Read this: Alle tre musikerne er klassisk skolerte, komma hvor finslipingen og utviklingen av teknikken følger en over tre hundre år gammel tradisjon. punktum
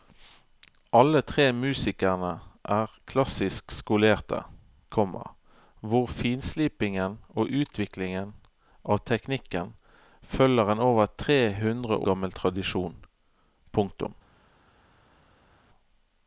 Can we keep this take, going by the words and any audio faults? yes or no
no